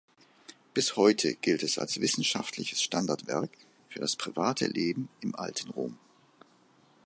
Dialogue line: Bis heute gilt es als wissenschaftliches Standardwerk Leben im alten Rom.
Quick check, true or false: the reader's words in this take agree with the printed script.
false